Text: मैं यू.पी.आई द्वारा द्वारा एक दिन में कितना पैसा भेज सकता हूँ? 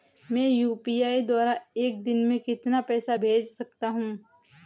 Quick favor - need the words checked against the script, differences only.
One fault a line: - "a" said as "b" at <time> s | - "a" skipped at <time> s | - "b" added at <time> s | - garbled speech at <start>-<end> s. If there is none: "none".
- "द्वारा" skipped at 1.6 s